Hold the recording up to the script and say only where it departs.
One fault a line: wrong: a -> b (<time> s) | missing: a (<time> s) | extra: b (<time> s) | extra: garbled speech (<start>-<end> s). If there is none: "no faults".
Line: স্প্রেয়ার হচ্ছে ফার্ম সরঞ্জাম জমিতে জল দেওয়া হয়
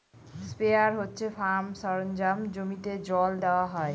no faults